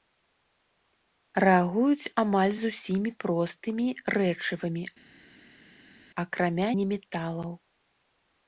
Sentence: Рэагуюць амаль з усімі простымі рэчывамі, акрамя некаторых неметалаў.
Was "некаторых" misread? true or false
true